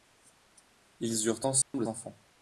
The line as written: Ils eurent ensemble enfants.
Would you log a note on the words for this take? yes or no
no